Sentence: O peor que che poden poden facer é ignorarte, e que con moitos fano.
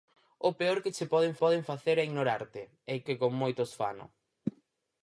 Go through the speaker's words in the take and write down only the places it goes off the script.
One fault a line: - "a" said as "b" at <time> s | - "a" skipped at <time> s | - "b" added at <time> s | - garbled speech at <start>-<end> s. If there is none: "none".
none